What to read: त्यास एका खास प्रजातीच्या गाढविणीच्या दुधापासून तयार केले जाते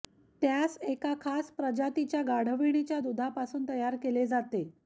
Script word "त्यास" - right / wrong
right